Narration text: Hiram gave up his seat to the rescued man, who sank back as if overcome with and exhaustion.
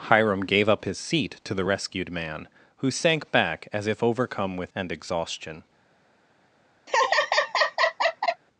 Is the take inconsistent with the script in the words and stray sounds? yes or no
yes